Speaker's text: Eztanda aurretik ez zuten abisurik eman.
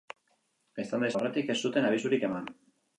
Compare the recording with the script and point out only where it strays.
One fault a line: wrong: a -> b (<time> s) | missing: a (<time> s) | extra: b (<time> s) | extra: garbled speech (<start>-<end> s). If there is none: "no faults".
no faults